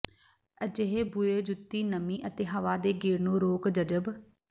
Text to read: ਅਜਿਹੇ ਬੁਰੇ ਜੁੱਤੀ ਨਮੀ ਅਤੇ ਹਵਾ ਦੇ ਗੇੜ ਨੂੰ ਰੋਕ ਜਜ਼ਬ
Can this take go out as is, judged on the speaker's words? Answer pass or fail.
pass